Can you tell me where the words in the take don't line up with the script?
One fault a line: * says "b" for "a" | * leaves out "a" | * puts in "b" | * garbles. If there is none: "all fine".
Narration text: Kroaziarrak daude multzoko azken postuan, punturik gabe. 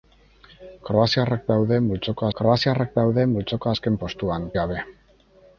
* puts in "kroaziarrak daude multzoko"
* leaves out "punturik"